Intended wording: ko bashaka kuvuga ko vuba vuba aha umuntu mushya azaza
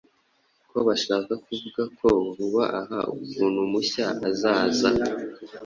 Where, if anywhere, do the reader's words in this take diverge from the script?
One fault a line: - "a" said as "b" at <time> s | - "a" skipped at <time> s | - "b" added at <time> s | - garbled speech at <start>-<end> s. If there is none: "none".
- "vuba" skipped at 2.6 s